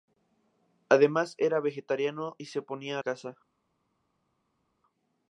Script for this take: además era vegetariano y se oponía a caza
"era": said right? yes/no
yes